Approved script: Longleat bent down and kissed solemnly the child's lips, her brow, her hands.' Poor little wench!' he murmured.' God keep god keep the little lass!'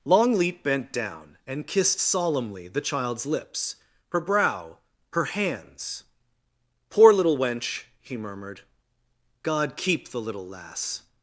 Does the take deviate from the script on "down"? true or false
false